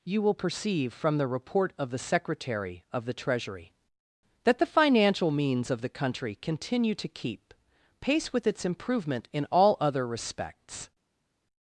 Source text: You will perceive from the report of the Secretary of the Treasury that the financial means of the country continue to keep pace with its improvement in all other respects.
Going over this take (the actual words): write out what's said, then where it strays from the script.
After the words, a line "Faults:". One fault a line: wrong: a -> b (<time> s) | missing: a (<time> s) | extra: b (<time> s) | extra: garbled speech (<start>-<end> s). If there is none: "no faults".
You will perceive from the report of the Secretary of the Treasury that the financial means of the country continue to keep pace with its improvement in all other respects.
Faults:
no faults